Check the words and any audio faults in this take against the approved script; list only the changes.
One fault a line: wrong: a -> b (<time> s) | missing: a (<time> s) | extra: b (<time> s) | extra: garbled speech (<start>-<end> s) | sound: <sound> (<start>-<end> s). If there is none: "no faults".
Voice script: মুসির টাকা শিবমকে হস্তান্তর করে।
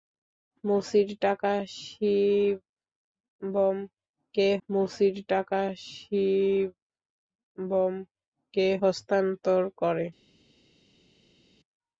extra: মুসির টাকা শিবমকে (4.7 s)